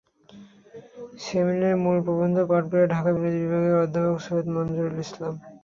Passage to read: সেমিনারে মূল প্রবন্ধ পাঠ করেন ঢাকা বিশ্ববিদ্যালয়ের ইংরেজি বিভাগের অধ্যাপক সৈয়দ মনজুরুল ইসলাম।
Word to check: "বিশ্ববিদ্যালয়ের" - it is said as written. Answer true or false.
false